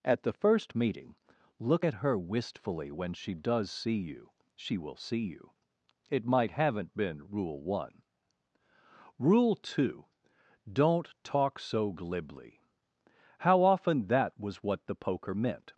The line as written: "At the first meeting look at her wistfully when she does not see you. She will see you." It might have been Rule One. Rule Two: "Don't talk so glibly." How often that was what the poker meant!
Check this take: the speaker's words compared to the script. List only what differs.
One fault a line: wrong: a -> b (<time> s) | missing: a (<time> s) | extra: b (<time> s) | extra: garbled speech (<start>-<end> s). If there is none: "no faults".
missing: not (3.7 s)
wrong: have -> haven't (6.5 s)